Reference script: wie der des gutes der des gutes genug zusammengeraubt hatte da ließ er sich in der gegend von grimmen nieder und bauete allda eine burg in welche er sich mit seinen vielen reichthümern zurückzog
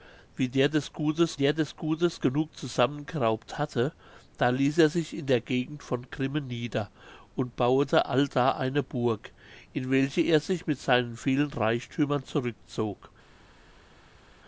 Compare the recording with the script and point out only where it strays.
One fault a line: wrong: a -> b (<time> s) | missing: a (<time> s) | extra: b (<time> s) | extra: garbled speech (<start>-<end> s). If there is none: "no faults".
no faults